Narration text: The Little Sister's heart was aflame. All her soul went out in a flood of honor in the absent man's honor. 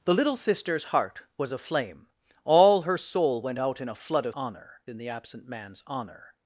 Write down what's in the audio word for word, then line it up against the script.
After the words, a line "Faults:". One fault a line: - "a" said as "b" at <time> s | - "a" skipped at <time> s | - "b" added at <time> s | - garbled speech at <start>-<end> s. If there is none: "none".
The Little Sister's heart was aflame. All her soul went out in a flood of honor in the absent man's honor.
Faults:
none